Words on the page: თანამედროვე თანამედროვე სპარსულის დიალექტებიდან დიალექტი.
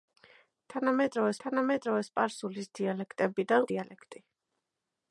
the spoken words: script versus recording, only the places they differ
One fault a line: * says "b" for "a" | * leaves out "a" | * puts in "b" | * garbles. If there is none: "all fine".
all fine